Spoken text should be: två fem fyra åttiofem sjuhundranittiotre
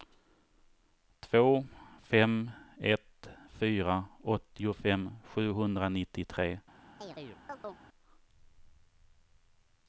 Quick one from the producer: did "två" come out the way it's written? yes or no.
yes